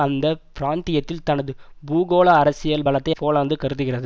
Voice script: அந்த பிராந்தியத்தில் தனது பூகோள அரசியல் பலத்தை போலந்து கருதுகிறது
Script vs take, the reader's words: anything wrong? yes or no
no